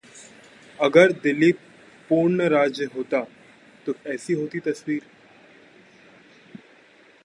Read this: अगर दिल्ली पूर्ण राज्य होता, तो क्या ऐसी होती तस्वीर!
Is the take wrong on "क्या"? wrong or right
wrong